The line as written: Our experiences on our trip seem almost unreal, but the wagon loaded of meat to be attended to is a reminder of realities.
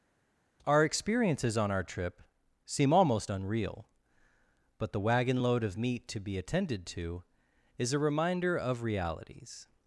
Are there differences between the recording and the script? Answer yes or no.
yes